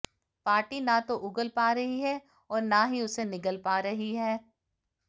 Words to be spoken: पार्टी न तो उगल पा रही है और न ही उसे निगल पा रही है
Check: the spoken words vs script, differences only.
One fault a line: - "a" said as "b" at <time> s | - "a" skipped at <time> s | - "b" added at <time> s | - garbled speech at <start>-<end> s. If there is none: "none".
none